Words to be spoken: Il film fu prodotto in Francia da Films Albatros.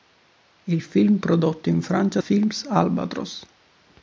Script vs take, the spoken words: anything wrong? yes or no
yes